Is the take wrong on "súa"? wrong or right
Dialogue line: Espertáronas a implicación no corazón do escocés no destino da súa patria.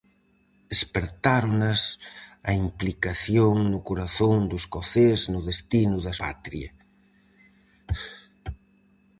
wrong